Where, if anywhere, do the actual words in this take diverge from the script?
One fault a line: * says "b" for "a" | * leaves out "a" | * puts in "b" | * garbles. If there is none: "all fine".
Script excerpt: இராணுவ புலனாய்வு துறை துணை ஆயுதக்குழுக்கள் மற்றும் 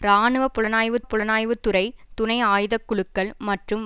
* puts in "புலனாய்வு"